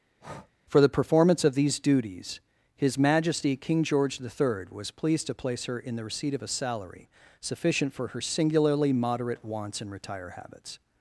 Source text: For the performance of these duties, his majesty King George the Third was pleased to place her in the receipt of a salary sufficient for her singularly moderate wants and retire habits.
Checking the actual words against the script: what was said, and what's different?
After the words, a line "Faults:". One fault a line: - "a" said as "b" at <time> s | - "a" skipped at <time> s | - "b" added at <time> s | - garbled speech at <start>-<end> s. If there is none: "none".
For the performance of these duties, his majesty King George the Third was pleased to place her in the receipt of a salary sufficient for her singularly moderate wants and retire habits.
Faults:
none